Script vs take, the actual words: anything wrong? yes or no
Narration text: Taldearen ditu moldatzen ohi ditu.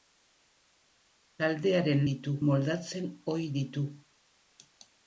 no